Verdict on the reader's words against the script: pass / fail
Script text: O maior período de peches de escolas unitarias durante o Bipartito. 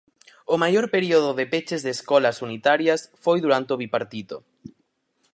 fail